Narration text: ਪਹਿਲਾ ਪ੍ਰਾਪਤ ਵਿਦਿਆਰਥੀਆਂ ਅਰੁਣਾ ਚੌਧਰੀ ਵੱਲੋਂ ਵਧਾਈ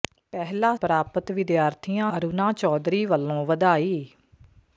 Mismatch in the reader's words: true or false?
false